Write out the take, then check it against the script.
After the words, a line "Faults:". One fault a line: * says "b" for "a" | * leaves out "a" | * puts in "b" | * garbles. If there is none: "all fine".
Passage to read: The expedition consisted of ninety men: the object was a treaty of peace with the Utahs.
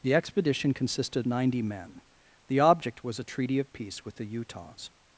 The expedition consisted ninety men: the object was a treaty of peace with the Utahs.
Faults:
* leaves out "of"